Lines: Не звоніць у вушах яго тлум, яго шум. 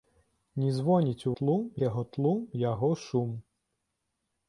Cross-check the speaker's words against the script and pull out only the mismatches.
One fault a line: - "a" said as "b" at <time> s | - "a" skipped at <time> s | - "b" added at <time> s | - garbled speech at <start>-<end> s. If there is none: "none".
- "вушах" said as "тлум" at 1.4 s